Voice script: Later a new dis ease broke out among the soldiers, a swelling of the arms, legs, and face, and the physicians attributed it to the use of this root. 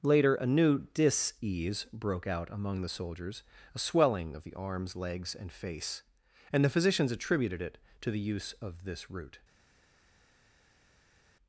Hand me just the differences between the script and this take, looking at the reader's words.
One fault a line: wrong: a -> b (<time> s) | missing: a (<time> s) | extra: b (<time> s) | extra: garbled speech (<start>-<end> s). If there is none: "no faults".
no faults